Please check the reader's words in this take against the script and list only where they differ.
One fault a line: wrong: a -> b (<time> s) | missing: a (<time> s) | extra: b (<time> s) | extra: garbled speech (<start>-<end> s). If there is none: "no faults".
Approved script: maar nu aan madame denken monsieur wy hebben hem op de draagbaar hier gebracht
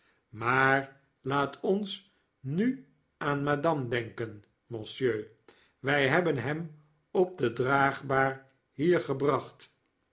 extra: laat ons (1.2 s)